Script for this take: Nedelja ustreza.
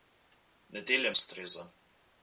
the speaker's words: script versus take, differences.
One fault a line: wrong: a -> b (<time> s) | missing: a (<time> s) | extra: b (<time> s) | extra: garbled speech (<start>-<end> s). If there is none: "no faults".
no faults